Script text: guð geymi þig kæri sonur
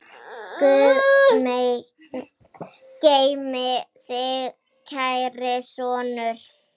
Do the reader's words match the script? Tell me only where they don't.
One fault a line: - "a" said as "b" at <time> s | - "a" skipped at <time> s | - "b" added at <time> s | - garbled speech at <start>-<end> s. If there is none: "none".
none